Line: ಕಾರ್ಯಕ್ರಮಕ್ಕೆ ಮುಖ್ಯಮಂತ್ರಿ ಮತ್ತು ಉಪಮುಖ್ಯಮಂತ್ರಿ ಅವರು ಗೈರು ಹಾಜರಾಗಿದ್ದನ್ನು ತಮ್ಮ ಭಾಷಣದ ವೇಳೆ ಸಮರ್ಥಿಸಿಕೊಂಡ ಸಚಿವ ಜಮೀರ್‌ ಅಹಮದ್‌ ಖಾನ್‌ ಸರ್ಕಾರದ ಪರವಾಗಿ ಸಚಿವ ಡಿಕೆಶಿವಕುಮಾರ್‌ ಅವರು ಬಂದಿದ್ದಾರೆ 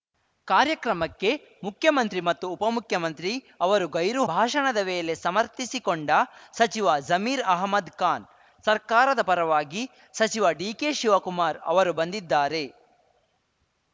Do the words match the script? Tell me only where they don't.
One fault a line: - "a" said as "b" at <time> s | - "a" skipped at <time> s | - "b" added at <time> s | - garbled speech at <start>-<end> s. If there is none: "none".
- "ಹಾಜರಾಗಿದ್ದನ್ನು ತಮ್ಮ" skipped at 4.2 s